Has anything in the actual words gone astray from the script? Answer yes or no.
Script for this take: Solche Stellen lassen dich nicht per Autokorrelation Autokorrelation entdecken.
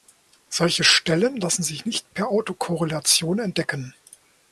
yes